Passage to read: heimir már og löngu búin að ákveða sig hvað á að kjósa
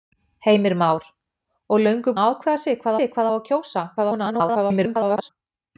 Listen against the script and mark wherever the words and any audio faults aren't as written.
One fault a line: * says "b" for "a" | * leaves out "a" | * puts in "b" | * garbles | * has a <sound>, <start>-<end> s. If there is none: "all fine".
* leaves out "búin"
* puts in "sig hvað"
* garbles